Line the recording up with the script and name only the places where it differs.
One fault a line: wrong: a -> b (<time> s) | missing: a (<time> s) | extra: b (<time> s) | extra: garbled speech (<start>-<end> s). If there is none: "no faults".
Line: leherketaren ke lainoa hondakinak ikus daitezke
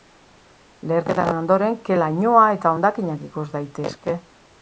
extra: ondoren (1.4 s)
extra: eta (2.6 s)